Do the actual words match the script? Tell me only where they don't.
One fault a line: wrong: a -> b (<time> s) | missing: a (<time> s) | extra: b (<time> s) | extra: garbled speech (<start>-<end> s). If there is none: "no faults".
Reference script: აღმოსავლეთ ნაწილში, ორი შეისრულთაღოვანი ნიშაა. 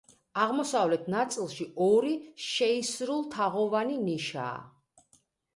no faults